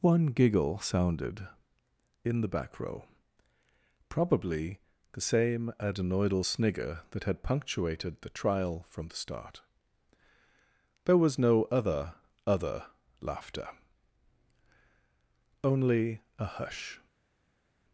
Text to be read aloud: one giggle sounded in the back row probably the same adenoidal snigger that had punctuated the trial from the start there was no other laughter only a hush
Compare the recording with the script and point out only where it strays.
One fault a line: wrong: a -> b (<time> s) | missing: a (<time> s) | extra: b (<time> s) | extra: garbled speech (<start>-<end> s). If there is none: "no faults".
extra: other (12.4 s)